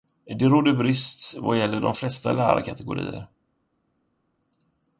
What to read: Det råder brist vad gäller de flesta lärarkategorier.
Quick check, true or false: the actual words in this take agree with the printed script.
true